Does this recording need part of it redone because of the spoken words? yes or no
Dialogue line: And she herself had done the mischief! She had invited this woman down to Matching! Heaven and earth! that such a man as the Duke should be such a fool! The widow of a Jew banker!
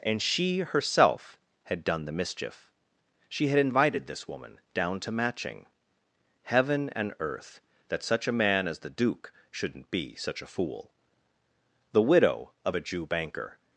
yes